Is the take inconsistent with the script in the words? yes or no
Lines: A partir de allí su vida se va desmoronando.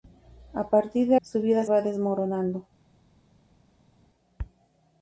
yes